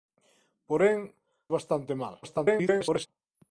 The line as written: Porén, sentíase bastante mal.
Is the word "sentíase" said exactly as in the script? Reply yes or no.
no